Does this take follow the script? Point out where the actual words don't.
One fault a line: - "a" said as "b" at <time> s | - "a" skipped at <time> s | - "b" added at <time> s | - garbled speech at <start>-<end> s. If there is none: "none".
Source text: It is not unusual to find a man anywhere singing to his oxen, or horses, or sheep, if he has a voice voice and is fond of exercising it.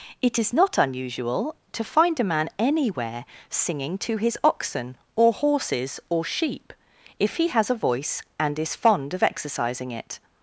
- "voice" skipped at 8.2 s